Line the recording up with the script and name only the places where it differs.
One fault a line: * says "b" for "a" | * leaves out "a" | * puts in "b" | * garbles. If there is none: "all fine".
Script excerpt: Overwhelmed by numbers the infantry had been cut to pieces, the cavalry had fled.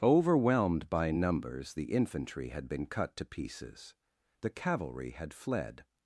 all fine